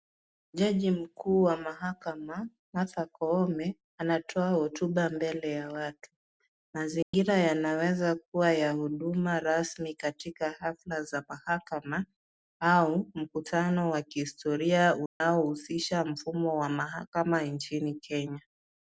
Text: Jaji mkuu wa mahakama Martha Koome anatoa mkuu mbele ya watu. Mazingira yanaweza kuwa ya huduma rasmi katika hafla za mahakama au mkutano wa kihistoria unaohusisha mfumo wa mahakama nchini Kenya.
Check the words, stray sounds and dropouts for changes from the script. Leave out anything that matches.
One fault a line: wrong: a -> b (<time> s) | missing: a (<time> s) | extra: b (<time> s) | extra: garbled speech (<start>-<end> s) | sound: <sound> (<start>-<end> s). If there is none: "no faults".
wrong: mkuu -> hotuba (4.5 s)
sound: dropout (7.0-7.1 s)
sound: dropout (15.1-15.2 s)